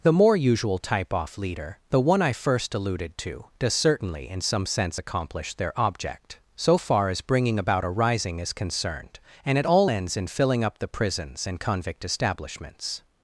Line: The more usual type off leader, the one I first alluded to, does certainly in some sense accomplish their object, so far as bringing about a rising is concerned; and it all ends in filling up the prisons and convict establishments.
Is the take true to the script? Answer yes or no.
yes